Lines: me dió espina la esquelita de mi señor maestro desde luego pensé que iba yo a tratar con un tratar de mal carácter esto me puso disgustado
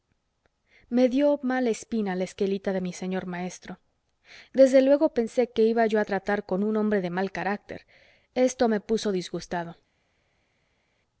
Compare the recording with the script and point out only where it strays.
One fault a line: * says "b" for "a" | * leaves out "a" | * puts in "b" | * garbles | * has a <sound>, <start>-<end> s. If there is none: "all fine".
* puts in "mala"
* says "hombre" for "tratar"